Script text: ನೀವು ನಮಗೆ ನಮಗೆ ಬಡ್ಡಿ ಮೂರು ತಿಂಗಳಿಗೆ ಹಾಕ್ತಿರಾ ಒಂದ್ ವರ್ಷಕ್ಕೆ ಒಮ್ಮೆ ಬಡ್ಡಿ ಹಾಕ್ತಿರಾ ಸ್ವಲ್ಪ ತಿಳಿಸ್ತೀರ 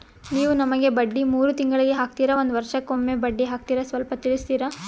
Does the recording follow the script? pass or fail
fail